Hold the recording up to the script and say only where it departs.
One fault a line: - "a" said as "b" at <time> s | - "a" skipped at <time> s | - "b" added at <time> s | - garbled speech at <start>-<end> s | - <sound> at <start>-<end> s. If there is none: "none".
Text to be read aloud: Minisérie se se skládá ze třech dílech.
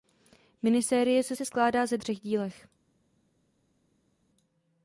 none